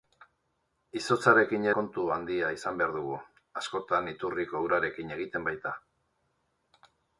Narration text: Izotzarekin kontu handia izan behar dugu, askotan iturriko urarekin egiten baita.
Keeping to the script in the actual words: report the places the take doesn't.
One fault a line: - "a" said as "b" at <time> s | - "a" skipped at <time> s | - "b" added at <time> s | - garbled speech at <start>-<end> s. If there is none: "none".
none